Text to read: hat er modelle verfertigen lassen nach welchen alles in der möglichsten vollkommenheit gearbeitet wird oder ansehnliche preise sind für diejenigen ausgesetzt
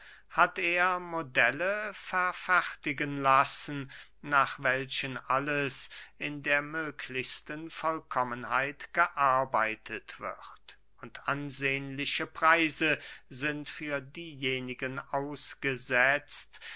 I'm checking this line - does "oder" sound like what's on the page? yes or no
no